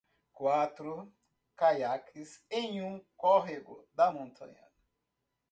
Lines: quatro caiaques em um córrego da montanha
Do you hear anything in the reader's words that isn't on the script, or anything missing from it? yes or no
no